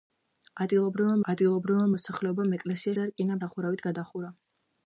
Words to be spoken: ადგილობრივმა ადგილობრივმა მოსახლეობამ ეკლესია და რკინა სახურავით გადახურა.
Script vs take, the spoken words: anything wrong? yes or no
no